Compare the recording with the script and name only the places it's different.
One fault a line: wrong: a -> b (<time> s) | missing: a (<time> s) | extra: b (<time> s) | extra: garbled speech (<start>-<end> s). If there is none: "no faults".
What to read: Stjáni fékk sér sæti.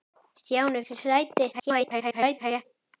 missing: fékk (0.8 s)
extra: garbled speech (1.5-2.7 s)